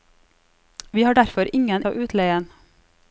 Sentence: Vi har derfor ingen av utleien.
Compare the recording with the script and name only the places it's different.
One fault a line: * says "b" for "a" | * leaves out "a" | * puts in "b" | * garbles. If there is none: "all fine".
all fine